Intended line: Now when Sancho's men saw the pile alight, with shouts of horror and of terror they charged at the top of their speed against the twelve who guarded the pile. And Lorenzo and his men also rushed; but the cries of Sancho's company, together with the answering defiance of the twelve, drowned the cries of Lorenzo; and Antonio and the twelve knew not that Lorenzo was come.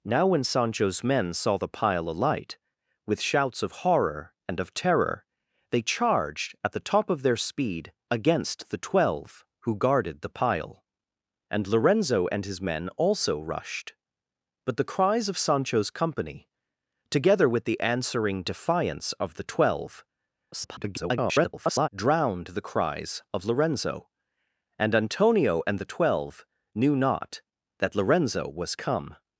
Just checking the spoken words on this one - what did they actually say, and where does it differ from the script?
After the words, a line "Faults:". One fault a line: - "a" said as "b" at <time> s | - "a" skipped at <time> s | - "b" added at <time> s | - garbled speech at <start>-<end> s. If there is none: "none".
Now when Sancho's men saw the pile alight, with shouts of horror and of terror they charged at the top of their speed against the twelve who guarded the pile. And Lorenzo and his men also rushed; but the cries of Sancho's company, together with the answering defiance of the twelve, [garbled] drowned the cries of Lorenzo; and Antonio and the twelve knew not that Lorenzo was come.
Faults:
- garbled speech at 20.5-21.9 s